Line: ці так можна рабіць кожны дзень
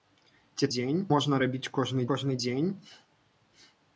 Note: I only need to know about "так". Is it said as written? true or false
false